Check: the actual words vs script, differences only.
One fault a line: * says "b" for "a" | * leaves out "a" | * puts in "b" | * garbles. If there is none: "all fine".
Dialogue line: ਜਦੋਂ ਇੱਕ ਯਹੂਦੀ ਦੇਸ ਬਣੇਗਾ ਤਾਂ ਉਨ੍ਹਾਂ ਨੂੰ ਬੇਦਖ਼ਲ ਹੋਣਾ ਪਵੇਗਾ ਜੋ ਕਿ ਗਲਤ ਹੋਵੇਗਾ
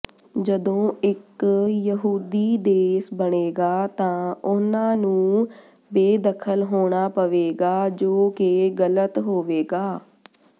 all fine